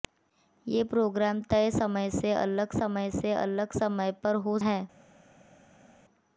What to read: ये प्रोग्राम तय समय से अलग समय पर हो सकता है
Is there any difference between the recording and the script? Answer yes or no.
yes